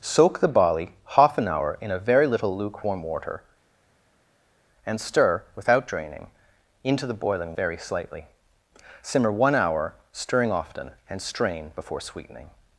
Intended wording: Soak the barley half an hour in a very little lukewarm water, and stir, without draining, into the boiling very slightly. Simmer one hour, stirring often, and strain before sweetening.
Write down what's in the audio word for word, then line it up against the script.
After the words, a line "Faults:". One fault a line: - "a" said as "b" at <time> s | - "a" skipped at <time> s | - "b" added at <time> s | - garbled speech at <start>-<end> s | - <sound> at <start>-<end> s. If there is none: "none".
Soak the barley half an hour in a very little lukewarm water, and stir, without draining, into the boiling very slightly. Simmer one hour, stirring often, and strain before sweetening.
Faults:
none